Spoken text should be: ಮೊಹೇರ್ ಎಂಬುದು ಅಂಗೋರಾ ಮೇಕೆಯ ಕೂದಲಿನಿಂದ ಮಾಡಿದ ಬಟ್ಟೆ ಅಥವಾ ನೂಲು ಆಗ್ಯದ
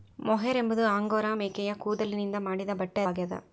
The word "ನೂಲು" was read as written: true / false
false